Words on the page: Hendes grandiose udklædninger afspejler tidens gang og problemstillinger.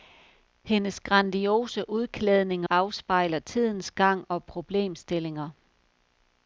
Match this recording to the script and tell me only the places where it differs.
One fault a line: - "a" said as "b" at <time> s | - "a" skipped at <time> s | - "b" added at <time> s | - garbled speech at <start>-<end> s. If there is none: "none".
none